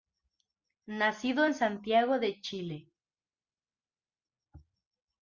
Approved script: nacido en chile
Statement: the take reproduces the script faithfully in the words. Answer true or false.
false